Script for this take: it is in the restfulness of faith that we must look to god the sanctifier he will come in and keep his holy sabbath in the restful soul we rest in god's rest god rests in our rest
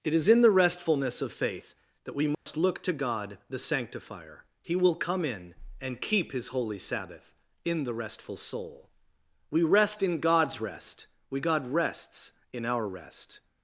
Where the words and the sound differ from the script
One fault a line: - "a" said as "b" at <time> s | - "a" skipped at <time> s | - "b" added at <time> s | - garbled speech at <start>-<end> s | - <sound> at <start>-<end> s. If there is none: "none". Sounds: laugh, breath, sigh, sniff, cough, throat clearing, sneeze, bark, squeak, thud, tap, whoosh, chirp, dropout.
- dropout at 2.3-2.5 s
- "we" added at 11.3 s